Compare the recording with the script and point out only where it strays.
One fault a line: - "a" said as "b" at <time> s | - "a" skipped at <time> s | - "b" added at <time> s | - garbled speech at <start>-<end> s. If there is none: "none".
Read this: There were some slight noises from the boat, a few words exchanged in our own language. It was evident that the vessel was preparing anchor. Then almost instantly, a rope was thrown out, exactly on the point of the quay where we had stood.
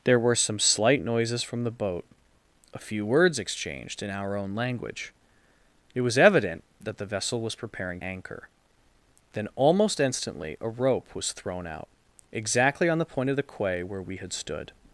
none